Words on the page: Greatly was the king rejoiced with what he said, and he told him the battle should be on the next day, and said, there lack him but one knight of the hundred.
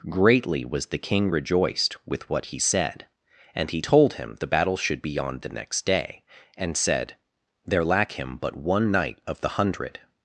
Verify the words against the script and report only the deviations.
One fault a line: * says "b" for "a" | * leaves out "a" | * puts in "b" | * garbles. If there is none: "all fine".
all fine